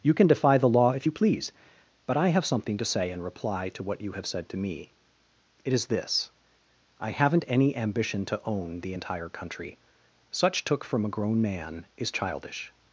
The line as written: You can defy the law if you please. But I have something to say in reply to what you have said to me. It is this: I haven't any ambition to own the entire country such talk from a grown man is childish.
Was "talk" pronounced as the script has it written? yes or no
no